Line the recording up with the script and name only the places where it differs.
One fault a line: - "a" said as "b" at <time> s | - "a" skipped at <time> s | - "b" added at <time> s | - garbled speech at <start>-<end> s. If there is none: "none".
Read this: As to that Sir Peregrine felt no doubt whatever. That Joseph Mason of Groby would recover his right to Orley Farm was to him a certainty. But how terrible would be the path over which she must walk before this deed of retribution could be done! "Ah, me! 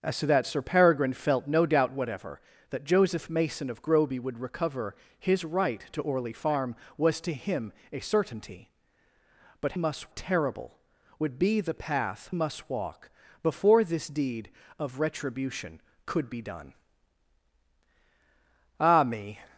- "how" said as "must" at 9.7 s
- "over which she" skipped at 12.3 s